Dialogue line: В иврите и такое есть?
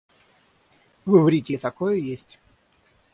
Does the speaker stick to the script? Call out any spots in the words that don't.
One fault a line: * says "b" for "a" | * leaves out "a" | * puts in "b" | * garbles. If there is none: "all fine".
all fine